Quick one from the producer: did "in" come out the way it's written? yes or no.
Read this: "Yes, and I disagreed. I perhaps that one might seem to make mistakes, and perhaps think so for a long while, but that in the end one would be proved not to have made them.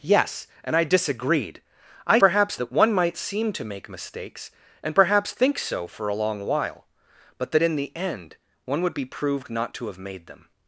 yes